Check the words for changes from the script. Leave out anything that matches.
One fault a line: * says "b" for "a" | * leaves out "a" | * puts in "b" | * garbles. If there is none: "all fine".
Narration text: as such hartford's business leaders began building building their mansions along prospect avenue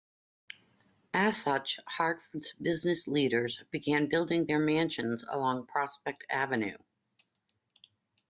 * leaves out "building"